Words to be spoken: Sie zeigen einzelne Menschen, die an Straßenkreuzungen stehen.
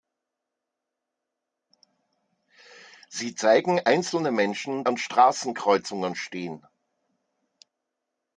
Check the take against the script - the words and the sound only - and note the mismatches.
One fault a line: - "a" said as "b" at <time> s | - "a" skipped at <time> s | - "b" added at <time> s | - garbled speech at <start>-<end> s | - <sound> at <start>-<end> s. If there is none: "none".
- "die" skipped at 4.9 s